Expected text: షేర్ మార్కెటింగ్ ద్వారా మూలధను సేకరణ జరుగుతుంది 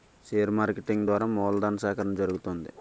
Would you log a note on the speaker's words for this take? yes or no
no